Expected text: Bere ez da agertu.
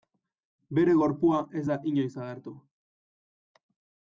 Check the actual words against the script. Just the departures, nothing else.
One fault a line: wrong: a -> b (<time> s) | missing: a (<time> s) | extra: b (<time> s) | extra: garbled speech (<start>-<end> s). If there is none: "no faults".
extra: gorpua (1.0 s)
extra: inoiz (1.9 s)